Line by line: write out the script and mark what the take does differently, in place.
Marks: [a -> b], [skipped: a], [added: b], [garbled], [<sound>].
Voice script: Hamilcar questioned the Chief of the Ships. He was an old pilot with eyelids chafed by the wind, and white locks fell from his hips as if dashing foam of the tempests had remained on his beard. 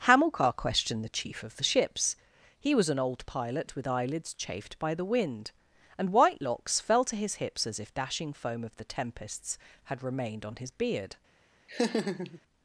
Hamilcar questioned the Chief of the Ships. He was an old pilot with eyelids chafed by the wind, and white locks fell [from -> to] his hips as if dashing foam of the tempests had remained on his beard. [laugh]